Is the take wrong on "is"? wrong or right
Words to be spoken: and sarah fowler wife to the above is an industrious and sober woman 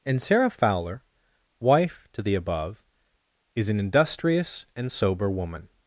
right